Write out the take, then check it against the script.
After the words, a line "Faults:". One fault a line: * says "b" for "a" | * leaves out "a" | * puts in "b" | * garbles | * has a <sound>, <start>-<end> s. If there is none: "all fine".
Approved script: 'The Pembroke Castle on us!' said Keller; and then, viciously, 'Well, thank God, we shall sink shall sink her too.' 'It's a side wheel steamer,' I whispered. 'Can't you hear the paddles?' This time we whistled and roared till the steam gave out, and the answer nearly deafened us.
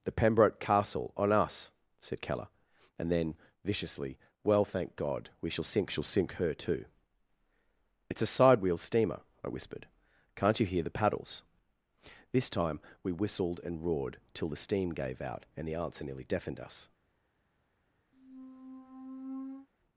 'The Pembroke Castle on us!' said Keller; and then, viciously, 'Well, thank God, we shall sink shall sink her too.' 'It's a side wheel steamer,' I whispered. 'Can't you hear the paddles?' This time we whistled and roared till the steam gave out, and the answer nearly deafened us.
Faults:
* has a squeak, 18.1-19.7 s